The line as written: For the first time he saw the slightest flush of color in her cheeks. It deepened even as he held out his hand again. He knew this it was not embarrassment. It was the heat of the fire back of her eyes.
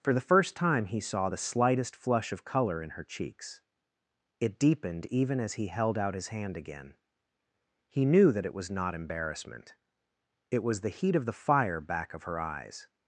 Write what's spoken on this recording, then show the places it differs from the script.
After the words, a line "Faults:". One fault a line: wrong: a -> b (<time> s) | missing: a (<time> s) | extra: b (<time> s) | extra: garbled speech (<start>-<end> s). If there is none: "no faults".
For the first time he saw the slightest flush of color in her cheeks. It deepened even as he held out his hand again. He knew that it was not embarrassment. It was the heat of the fire back of her eyes.
Faults:
wrong: this -> that (8.3 s)